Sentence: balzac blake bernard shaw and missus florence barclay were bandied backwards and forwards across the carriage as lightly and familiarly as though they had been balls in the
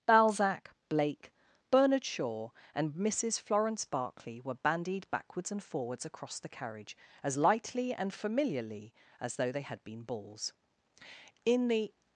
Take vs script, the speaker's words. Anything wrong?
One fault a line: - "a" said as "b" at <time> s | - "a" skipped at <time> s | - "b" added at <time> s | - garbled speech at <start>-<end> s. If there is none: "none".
none